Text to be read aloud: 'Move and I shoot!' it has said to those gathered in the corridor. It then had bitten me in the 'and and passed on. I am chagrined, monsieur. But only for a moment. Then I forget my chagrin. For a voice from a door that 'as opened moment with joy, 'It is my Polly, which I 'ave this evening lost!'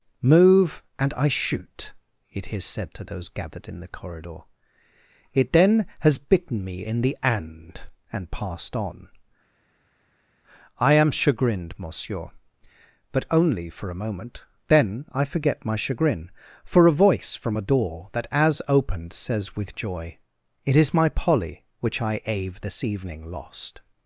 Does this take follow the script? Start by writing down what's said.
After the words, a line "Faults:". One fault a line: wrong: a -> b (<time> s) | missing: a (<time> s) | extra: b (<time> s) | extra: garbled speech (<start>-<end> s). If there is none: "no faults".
'Move and I shoot!' it has said to those gathered in the corridor. It then has bitten me in the 'and and passed on. I am chagrined, monsieur. But only for a moment. Then I forget my chagrin. For a voice from a door that 'as opened says with joy, 'It is my Polly, which I 'ave this evening lost!'
Faults:
wrong: had -> has (6.0 s)
wrong: moment -> says (19.1 s)